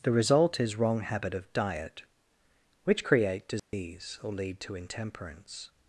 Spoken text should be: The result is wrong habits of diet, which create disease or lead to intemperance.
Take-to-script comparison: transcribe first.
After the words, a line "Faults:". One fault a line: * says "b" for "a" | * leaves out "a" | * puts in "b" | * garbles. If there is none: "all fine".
The result is wrong habit of diet, which create disease or lead to intemperance.
Faults:
* says "habit" for "habits"